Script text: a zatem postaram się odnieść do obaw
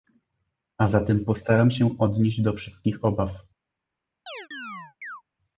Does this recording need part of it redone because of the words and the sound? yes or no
yes